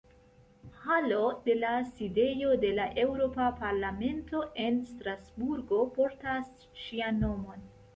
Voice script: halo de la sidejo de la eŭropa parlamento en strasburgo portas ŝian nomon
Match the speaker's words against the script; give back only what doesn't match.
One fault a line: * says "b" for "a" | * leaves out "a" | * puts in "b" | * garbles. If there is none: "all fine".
all fine